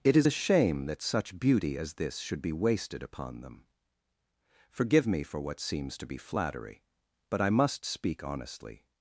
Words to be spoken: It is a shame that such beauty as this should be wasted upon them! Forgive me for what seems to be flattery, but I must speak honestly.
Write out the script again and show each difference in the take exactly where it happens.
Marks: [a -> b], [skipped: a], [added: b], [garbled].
It is a shame that such beauty as this should be wasted upon them! Forgive me for what seems to be flattery, but I must speak honestly.